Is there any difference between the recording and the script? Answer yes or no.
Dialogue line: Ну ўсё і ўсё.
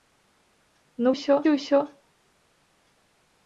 no